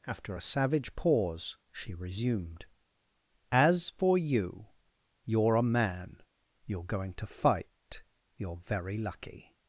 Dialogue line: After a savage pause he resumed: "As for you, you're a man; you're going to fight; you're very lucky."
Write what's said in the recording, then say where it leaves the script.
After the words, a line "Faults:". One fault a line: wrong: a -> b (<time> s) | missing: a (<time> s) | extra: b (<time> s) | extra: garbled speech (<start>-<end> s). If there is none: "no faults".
After a savage pause she resumed: "As for you, you're a man; you're going to fight; you're very lucky."
Faults:
wrong: he -> she (1.7 s)